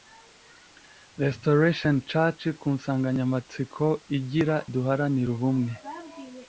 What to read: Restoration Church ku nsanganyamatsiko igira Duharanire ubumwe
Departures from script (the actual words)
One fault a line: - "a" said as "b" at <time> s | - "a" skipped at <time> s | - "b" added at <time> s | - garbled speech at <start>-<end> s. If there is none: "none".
none